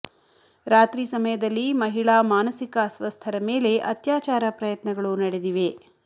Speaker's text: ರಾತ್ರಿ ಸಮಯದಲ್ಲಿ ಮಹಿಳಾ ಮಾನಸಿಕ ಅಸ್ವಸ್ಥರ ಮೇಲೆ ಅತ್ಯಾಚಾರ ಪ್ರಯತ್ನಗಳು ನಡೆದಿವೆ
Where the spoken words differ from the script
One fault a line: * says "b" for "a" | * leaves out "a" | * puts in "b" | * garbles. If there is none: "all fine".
all fine